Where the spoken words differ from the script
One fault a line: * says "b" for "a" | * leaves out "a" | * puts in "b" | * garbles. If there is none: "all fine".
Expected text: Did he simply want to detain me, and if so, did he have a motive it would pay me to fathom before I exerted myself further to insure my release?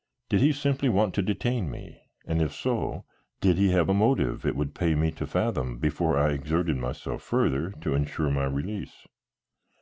all fine